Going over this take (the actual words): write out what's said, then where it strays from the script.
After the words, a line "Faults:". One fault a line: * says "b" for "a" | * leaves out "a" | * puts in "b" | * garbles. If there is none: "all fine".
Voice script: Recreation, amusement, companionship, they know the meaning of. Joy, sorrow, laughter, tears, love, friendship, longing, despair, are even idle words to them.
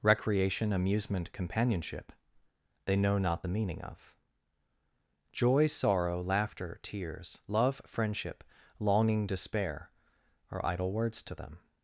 Recreation, amusement, companionship, they know not the meaning of. Joy, sorrow, laughter, tears, love, friendship, longing, despair, are idle words to them.
Faults:
* puts in "not"
* leaves out "even"